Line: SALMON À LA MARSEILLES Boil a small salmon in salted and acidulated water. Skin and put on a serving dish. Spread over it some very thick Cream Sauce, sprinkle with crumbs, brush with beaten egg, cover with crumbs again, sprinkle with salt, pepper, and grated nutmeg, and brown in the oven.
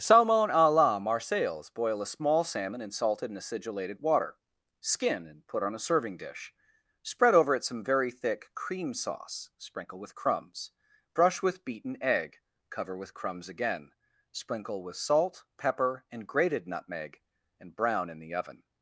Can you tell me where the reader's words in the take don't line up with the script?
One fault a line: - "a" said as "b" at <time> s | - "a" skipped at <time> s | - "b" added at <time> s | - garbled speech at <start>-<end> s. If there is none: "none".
none